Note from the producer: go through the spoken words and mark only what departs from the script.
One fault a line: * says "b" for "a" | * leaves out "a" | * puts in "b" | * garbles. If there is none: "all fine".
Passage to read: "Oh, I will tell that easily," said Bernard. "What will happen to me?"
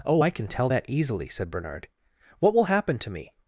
* says "can" for "will"